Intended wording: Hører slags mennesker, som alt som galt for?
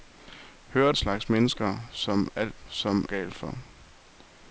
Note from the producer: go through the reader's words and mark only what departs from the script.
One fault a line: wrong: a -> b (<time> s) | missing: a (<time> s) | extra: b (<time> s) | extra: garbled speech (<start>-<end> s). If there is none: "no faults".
no faults